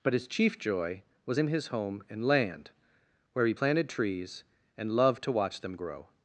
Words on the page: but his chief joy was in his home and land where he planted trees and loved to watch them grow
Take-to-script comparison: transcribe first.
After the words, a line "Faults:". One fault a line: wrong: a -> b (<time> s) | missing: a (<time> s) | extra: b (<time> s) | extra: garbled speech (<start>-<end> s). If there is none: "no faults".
but his chief joy was in his home and land where he planted trees and loved to watch them grow
Faults:
no faults